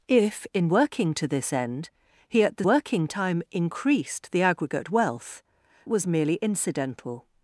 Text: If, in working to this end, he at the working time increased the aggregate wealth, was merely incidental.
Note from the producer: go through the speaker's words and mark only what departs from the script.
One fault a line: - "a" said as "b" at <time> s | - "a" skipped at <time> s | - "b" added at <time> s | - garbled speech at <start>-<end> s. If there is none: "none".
none